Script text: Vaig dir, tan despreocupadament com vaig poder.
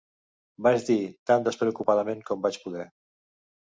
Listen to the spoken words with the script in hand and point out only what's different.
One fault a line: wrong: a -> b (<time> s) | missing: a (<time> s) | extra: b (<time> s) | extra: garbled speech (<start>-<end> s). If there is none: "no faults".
no faults